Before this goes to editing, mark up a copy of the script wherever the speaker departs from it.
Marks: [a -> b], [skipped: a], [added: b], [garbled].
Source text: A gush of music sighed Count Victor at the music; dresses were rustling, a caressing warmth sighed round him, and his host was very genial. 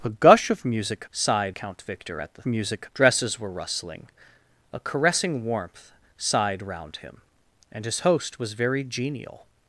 A gush of music sighed Count Victor at the music; dresses were rustling, a caressing warmth sighed round him, and his host was very genial.